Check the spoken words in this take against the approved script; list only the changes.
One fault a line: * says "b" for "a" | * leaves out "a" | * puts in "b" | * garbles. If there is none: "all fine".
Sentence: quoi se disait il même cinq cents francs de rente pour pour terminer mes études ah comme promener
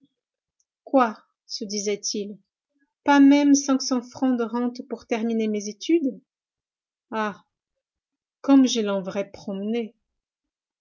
* puts in "pas"
* leaves out "pour"
* puts in "je l'enverrais"